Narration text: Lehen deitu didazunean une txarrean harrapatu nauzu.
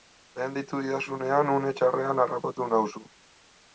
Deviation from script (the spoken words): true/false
false